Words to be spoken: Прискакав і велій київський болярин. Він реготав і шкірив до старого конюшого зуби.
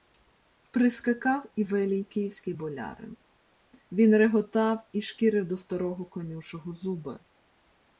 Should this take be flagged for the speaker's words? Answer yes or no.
no